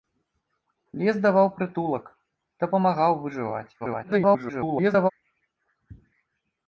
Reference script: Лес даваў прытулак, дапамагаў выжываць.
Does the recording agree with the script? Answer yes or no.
no